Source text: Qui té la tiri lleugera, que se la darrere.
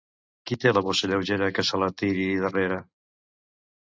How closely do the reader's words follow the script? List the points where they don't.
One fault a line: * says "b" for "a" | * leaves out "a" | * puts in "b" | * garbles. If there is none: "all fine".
* says "bossa" for "tiri"
* puts in "tiri"